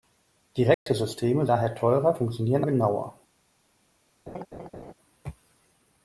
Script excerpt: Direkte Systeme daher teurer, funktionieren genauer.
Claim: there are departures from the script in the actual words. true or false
false